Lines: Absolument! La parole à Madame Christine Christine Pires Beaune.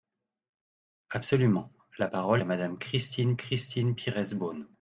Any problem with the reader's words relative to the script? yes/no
no